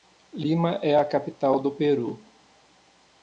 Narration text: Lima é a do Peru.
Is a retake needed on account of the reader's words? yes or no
yes